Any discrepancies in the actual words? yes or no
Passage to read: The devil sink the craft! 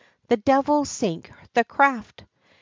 no